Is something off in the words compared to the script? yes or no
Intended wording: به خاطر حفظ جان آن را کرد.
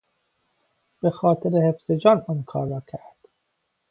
yes